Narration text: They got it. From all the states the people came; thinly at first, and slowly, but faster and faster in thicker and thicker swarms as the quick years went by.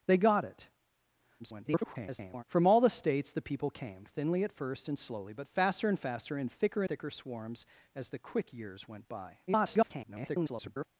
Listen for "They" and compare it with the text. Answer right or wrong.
right